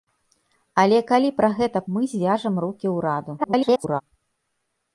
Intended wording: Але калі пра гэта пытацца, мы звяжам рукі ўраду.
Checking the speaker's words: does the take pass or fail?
fail